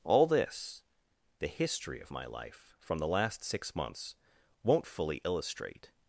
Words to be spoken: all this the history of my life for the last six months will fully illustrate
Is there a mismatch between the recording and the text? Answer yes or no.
yes